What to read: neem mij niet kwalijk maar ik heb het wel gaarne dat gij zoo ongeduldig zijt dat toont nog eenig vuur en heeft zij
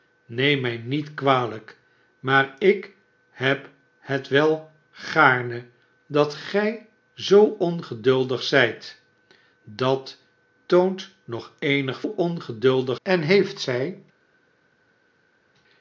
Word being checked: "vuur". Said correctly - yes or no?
no